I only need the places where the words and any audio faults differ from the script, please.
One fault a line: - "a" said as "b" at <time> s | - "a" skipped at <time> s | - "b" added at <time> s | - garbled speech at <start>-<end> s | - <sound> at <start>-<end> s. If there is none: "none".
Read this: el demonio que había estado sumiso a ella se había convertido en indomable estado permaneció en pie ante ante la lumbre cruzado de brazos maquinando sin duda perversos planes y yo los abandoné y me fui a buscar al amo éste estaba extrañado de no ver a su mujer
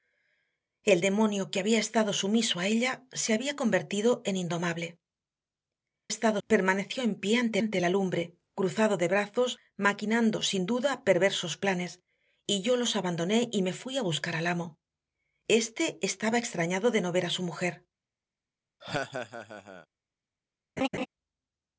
- laugh at 18.8-19.9 s
- laugh at 20.8-21.1 s